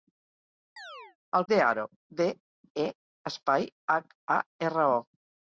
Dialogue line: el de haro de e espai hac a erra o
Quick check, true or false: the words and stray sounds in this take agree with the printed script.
false